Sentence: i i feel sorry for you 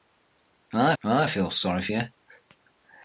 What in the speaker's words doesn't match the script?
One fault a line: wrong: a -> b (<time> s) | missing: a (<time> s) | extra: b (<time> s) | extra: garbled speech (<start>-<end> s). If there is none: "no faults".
no faults